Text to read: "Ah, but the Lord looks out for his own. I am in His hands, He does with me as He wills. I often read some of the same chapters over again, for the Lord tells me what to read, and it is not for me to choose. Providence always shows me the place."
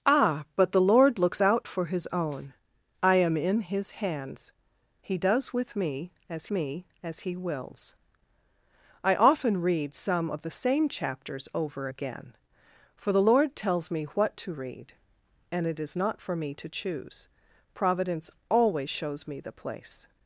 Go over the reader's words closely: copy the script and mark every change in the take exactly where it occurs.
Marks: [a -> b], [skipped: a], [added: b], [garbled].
"Ah, but the Lord looks out for his own. I am in His hands, He does with me as [added: me as] He wills. I often read some of the same chapters over again, for the Lord tells me what to read, and it is not for me to choose. Providence always shows me the place."